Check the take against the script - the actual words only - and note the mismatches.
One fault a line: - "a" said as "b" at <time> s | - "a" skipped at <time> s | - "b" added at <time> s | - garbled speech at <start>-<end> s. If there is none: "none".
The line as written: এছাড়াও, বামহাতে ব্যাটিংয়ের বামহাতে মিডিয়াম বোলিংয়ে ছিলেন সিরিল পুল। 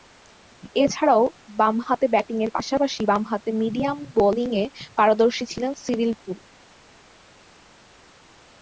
- "পাশাপাশি" added at 2.5 s
- "পারদর্শী" added at 5.0 s